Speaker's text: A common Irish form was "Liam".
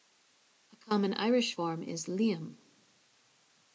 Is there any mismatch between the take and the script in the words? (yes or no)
yes